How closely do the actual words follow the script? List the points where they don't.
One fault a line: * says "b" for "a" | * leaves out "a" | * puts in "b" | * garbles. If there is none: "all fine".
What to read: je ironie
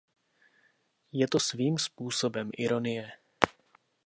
* puts in "to svým způsobem"